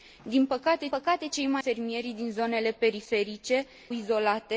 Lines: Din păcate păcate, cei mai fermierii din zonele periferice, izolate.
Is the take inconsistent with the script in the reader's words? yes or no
no